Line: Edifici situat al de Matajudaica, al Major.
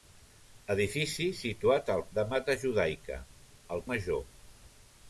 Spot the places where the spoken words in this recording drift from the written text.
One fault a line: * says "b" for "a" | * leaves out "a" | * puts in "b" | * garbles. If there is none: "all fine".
all fine